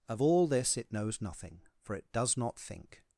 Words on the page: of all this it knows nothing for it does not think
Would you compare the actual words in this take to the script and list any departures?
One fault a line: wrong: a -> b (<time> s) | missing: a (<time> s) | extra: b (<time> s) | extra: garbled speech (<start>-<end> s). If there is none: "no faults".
no faults